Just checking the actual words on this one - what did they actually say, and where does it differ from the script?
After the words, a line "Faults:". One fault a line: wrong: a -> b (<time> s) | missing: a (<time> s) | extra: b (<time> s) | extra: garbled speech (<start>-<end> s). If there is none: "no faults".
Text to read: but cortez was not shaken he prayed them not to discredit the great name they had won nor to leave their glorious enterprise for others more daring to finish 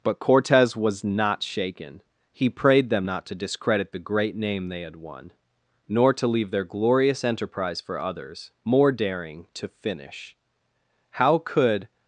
but cortez was not shaken he prayed them not to discredit the great name they had won nor to leave their glorious enterprise for others more daring to finish how could
Faults:
extra: how could (11.1 s)